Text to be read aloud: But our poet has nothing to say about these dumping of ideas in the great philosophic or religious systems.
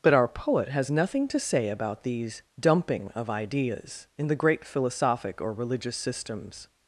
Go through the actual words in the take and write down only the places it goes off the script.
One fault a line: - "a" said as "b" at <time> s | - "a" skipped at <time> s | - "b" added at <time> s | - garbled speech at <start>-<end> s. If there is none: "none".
none